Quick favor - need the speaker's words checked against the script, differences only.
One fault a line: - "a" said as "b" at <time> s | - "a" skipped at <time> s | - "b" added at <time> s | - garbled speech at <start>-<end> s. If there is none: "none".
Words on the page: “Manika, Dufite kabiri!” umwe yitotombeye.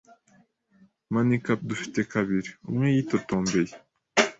none